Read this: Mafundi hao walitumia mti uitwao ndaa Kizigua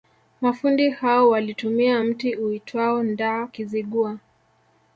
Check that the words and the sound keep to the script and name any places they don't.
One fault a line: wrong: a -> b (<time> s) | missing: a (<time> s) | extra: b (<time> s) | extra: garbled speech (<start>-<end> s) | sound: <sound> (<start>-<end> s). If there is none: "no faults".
no faults